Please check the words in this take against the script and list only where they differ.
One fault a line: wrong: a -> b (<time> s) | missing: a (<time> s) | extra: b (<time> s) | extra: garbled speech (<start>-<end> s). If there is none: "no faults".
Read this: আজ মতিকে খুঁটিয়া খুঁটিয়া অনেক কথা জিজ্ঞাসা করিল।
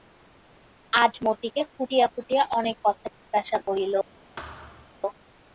no faults